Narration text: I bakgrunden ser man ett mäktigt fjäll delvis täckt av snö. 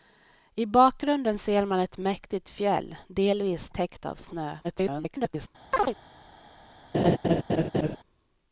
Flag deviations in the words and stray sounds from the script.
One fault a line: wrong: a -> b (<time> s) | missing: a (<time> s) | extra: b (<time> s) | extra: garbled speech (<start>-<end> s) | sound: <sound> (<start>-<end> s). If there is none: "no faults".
extra: garbled speech (4.6-5.5 s)
sound: chirp (5.7-6.0 s)
sound: laugh (6.9-8.0 s)